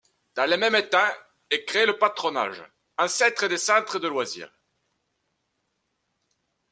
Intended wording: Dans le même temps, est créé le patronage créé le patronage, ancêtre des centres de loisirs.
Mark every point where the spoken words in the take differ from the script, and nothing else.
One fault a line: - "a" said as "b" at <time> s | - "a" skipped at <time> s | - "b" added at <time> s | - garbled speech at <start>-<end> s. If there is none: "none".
- "créé le patronage" skipped at 2.6 s